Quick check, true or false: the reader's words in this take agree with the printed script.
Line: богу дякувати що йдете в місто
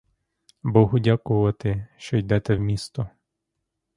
true